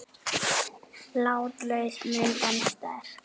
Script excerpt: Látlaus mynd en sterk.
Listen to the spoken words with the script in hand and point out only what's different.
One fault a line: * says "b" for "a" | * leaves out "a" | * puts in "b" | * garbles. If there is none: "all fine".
all fine